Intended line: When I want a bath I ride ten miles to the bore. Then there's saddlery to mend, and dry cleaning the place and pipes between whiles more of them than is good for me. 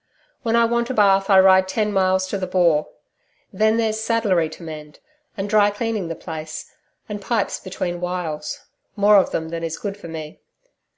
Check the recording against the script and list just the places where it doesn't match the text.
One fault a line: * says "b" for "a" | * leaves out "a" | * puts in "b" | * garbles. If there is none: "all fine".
all fine